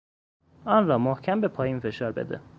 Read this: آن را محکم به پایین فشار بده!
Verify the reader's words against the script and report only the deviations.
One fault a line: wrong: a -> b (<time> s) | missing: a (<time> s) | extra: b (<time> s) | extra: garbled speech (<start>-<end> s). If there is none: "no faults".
no faults